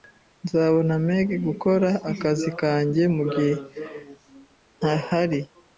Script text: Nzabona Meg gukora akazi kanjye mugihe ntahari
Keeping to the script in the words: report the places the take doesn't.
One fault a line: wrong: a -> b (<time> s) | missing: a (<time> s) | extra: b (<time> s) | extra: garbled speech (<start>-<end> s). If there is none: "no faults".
no faults